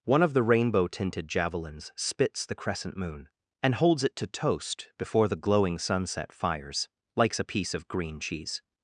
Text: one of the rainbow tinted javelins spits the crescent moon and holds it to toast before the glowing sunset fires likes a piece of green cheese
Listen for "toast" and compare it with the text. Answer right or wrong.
right